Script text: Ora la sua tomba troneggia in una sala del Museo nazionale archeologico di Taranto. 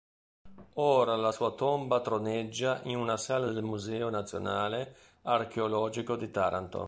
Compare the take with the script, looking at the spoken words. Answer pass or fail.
pass